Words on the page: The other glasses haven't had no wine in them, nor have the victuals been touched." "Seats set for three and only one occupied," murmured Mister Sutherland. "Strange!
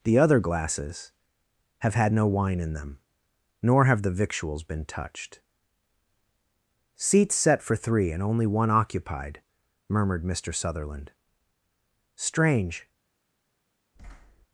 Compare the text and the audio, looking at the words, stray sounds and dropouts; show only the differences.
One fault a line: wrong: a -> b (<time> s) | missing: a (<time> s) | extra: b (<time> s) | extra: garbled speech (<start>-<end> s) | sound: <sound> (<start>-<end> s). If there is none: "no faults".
wrong: haven't -> have (1.8 s)
sound: thud (14.0-14.5 s)